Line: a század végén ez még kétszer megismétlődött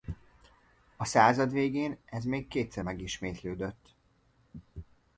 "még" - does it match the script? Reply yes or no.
yes